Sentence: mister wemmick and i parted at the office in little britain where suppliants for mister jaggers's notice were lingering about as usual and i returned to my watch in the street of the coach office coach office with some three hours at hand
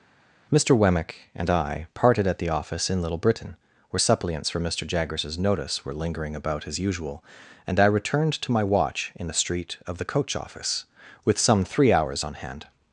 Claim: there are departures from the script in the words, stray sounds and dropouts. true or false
true